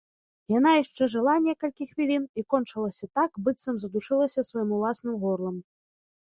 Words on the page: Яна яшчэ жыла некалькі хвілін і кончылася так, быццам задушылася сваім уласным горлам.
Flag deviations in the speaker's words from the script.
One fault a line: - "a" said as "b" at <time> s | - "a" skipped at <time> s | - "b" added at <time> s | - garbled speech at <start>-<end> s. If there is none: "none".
none